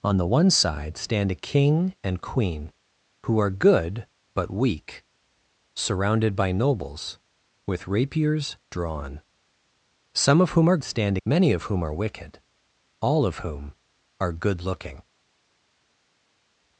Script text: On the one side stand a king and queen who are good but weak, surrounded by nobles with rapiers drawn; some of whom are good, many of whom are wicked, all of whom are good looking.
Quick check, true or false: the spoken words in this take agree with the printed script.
false